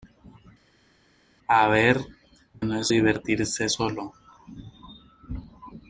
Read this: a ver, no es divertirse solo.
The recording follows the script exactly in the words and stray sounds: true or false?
true